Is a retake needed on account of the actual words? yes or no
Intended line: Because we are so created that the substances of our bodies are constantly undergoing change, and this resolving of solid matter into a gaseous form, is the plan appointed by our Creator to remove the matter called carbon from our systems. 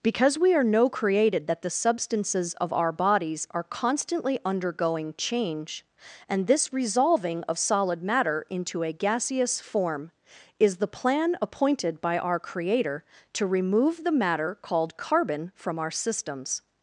yes